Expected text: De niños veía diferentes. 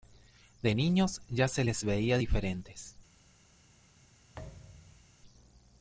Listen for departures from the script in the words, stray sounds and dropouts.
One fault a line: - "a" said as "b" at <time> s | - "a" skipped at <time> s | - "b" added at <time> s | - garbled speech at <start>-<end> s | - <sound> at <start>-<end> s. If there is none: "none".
- "ya se les" added at 1.3 s
- thud at 4.3-5.2 s